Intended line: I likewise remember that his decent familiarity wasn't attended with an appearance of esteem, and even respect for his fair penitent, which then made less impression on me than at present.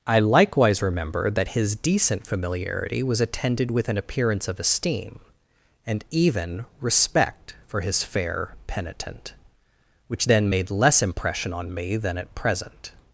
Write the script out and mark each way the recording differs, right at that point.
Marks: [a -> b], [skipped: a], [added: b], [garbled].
I likewise remember that his decent familiarity [wasn't -> was] attended with an appearance of esteem, and even respect for his fair penitent, which then made less impression on me than at present.